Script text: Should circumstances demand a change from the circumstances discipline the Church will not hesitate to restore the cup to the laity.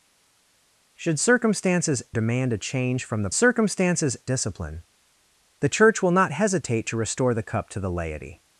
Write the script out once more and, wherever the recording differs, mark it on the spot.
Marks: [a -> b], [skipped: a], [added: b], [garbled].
Should circumstances demand a change from the circumstances discipline the Church will not hesitate to restore the cup to the laity.